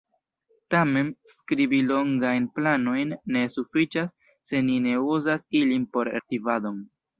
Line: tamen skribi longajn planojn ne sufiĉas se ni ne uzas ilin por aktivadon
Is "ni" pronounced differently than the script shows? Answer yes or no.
no